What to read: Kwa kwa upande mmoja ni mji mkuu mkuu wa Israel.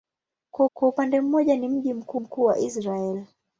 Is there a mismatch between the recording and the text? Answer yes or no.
no